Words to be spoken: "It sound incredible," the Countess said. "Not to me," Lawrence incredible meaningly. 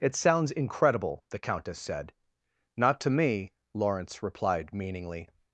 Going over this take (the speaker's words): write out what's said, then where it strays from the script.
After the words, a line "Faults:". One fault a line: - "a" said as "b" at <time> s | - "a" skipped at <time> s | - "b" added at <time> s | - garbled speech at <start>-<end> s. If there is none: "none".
"It sounds incredible," the Countess said. "Not to me," Lawrence replied meaningly.
Faults:
- "sound" said as "sounds" at 0.1 s
- "incredible" said as "replied" at 4.2 s